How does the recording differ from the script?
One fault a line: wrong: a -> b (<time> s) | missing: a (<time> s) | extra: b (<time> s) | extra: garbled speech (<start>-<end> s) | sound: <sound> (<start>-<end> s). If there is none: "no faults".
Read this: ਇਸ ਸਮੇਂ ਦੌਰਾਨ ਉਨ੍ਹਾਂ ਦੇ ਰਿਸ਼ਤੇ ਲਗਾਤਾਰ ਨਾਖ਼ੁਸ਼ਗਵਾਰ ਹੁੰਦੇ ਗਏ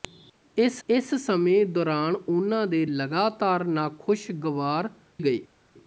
extra: ਇਸ (0.9 s)
missing: ਰਿਸ਼ਤੇ (2.9 s)
missing: ਹੁੰਦੇ (4.9 s)